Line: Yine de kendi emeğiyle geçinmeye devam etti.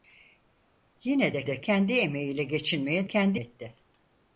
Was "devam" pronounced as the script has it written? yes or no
no